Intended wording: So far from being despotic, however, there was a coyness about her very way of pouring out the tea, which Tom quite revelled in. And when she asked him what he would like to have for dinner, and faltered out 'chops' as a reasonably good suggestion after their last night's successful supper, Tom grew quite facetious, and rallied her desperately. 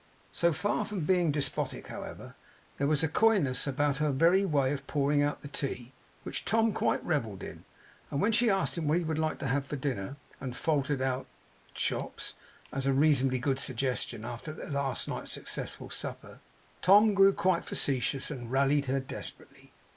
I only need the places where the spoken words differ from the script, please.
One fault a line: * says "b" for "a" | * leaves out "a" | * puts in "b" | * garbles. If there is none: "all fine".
all fine